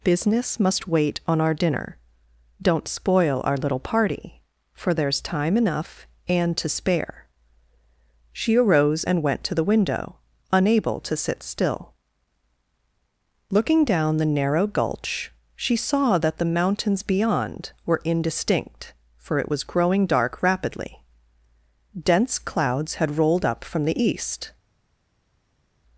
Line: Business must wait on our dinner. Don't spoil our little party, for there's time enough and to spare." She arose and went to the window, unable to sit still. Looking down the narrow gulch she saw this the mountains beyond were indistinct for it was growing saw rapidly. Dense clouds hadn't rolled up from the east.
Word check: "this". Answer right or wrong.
wrong